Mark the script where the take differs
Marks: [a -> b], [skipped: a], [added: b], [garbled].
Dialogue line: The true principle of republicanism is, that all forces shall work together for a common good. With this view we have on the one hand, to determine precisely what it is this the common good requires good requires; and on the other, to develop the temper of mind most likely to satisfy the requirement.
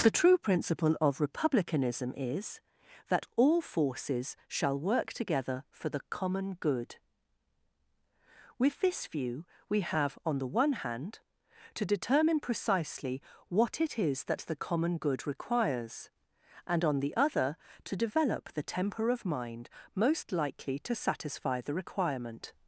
The true principle of republicanism is, that all forces shall work together for [a -> the] common good. With this view we have on the one hand, to determine precisely what it is [this -> that] the common good requires [skipped: good requires;] and on the other, to develop the temper of mind most likely to satisfy the requirement.